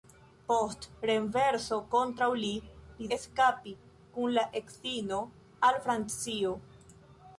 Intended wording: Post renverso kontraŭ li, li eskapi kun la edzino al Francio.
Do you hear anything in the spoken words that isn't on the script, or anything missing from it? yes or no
no